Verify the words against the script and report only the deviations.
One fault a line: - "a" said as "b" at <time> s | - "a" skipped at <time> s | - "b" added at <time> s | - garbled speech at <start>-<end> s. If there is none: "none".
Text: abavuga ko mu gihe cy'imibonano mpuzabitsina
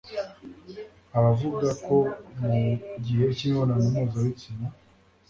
none